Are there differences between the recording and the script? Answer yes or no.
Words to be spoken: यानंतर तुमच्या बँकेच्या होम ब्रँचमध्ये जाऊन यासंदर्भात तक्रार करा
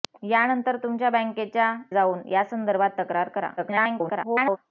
yes